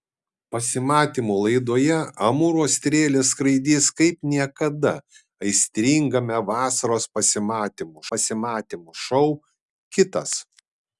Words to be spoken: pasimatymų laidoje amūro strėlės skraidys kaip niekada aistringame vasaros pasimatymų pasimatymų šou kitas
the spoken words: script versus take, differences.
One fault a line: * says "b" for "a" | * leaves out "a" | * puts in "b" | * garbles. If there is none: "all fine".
all fine